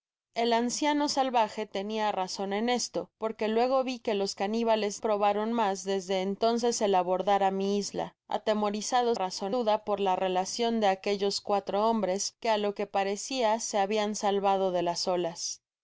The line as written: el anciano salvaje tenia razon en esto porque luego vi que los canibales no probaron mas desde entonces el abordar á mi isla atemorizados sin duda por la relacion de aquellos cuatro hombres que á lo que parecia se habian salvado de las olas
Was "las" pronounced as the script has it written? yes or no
yes